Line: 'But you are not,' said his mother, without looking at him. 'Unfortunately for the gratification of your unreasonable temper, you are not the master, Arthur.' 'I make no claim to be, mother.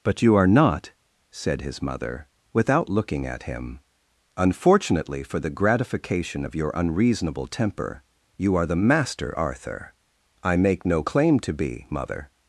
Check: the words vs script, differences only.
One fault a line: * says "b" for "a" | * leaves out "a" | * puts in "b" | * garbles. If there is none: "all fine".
* leaves out "not"